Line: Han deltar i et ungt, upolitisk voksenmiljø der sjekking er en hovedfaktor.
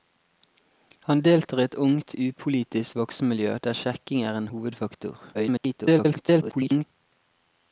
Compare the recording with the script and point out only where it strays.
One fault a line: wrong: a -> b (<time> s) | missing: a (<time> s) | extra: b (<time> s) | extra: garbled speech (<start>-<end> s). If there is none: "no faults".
extra: garbled speech (5.3-6.8 s)